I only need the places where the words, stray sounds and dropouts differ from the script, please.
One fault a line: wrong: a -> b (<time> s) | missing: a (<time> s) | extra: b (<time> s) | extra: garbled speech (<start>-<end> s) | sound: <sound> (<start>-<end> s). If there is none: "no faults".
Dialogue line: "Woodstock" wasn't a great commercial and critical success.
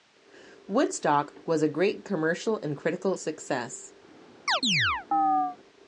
wrong: wasn't -> was (1.4 s)
sound: chirp (4.5-5.6 s)